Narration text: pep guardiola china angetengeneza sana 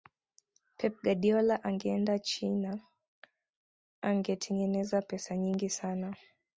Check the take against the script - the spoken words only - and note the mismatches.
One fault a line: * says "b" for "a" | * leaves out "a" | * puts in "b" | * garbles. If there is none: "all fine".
* puts in "angeenda"
* puts in "pesa nyingi"